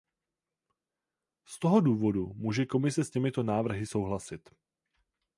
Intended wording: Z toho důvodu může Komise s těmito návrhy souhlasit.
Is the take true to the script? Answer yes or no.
yes